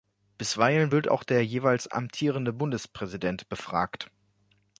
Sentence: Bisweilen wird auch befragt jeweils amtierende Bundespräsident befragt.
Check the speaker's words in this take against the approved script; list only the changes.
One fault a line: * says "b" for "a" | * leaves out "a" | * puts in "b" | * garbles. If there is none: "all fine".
* says "der" for "befragt"